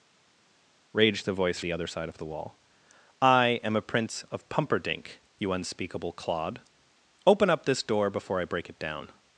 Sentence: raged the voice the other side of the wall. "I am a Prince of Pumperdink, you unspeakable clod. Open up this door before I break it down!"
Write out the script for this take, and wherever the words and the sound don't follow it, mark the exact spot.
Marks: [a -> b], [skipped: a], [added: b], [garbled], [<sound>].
raged the voice the other side of the wall. "I am a Prince of Pumperdink, you unspeakable clod. Open up this door before I break it down!"